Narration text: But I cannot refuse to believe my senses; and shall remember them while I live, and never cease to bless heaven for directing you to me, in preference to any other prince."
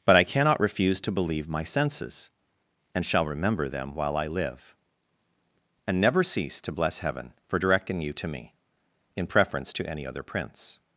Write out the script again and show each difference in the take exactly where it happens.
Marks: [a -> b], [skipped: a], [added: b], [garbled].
But I cannot refuse to believe my senses; and shall remember them while I live, and never cease to bless heaven for directing you to me, in preference to any other prince."